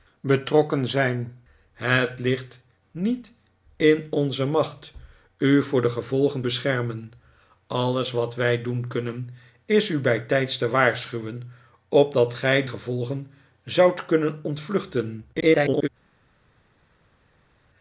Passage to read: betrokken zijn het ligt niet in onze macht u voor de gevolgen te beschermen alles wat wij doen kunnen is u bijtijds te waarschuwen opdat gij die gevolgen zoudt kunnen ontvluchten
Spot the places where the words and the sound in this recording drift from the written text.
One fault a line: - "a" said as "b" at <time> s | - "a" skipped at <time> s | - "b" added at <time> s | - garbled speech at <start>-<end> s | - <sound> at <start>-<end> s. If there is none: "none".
- "te" skipped at 6.5 s
- "die" skipped at 12.6 s
- garbled speech at 15.3-15.9 s